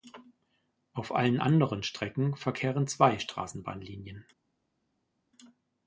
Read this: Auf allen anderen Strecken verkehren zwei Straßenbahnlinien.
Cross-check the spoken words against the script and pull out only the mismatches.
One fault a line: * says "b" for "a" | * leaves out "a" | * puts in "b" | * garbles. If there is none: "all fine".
all fine